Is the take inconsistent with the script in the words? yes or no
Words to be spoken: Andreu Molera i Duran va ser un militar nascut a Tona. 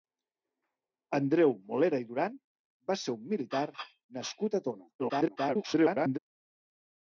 yes